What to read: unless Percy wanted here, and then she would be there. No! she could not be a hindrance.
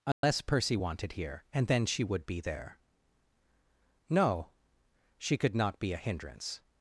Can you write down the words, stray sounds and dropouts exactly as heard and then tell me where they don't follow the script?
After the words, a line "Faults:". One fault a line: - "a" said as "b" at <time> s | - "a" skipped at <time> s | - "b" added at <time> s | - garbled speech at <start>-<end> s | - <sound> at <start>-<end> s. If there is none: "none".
unless Percy wanted here, and then she would be there. No! she could not be a hindrance.
Faults:
- dropout at 0.1-0.2 s